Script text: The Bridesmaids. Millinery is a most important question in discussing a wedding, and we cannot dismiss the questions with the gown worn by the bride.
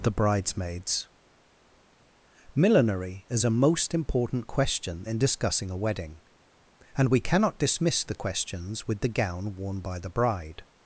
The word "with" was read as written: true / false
true